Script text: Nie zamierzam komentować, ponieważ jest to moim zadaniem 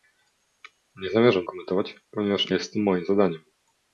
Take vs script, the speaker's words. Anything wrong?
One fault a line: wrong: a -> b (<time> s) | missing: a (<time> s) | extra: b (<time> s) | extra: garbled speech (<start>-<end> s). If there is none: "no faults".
no faults